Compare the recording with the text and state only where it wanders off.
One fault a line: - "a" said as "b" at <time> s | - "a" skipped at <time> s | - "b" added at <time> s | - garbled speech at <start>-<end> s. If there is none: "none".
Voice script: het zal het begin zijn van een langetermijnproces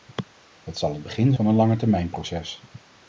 - "zijn" skipped at 1.3 s